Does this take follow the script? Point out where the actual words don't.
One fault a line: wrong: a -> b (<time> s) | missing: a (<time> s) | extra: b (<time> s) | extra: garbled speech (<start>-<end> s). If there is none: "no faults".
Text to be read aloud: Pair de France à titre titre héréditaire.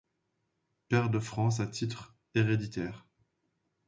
missing: titre (2.1 s)